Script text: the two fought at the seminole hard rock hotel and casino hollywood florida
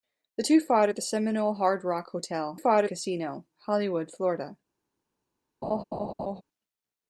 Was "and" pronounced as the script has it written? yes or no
no